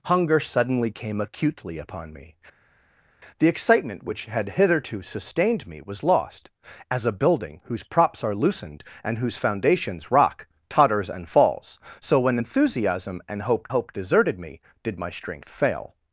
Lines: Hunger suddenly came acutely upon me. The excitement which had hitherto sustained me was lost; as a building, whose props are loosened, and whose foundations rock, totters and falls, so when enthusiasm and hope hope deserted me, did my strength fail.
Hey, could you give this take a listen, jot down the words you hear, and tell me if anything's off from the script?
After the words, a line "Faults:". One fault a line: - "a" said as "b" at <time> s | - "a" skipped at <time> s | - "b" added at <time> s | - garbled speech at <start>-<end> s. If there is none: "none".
Hunger suddenly came acutely upon me. The excitement which had hitherto sustained me was lost; as a building, whose props are loosened, and whose foundations rock, totters and falls, so when enthusiasm and hope hope deserted me, did my strength fail.
Faults:
none